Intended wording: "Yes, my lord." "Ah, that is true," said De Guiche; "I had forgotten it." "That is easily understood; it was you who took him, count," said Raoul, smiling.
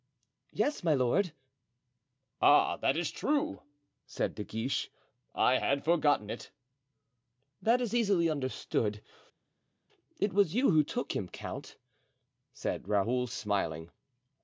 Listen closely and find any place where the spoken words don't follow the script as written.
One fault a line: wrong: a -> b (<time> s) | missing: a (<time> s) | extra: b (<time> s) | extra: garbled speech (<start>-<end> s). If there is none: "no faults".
no faults